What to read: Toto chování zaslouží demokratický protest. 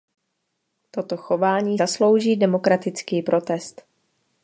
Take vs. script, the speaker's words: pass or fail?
pass